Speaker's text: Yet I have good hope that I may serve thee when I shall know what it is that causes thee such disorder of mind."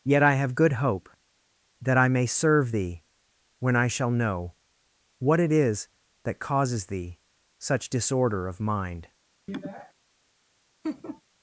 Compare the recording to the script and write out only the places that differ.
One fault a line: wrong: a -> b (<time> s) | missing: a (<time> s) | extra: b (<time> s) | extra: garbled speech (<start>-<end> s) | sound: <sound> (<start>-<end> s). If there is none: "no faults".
sound: sniff (9.5-9.9 s)
sound: laugh (10.8-11.2 s)